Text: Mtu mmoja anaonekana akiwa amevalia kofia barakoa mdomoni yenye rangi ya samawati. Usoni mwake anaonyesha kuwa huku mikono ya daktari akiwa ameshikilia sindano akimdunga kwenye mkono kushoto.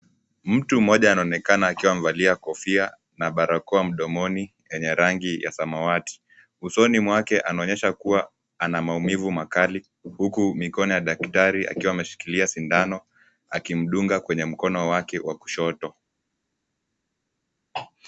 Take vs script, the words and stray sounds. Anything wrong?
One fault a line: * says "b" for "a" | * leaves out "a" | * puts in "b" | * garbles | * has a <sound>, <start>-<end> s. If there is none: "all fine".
* puts in "na"
* puts in "ana maumivu makali"
* puts in "wake wa"